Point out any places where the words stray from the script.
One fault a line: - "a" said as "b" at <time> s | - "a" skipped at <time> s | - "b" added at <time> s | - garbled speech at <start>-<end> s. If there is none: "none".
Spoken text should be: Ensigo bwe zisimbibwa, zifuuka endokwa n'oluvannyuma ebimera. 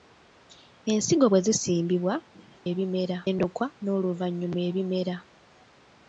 - "zifuuka" said as "ebimera" at 2.7 s